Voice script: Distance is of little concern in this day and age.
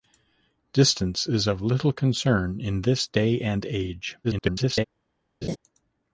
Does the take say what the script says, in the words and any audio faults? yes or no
no